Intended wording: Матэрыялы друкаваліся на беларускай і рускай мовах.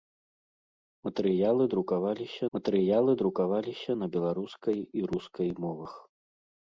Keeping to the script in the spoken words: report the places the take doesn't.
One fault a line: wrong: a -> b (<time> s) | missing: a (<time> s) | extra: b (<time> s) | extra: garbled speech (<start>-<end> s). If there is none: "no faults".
extra: матэрыялы друкаваліся (2.6 s)